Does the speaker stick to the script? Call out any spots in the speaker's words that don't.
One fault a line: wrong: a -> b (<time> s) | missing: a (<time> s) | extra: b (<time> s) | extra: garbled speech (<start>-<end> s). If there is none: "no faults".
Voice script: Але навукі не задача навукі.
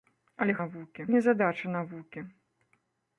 no faults